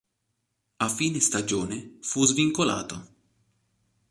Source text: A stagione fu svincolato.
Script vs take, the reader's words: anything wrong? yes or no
yes